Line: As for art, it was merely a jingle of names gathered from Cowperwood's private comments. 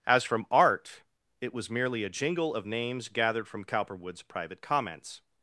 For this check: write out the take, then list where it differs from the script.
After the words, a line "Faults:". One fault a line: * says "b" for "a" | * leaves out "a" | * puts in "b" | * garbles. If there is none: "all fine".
As from art, it was merely a jingle of names gathered from Cowperwood's private comments.
Faults:
* says "from" for "for"